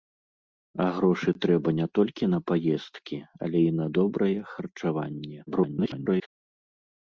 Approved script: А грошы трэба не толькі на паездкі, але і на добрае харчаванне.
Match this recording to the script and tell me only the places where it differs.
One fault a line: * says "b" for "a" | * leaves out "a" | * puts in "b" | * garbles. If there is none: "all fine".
* garbles